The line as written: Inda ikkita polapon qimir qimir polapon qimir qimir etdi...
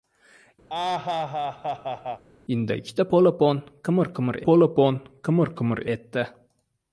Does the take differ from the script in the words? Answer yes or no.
no